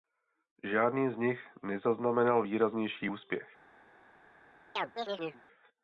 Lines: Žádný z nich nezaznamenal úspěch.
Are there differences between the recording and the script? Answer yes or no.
yes